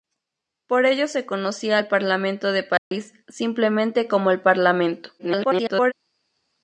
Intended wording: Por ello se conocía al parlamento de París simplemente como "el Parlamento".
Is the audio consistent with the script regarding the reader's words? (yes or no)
no